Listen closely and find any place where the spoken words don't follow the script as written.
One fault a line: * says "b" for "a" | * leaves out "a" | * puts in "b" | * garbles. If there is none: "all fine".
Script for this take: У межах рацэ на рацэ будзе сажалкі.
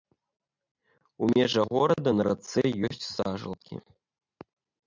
* says "горада" for "рацэ"
* says "ёсць" for "будзе"